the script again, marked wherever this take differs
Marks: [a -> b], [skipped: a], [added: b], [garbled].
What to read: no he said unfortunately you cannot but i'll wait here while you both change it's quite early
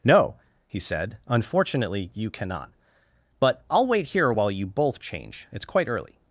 no he said unfortunately you cannot but i'll wait here while you both change it's quite early